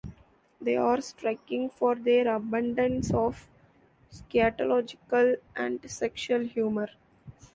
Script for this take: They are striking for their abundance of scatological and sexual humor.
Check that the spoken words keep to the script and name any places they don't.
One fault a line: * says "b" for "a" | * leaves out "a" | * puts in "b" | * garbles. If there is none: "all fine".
all fine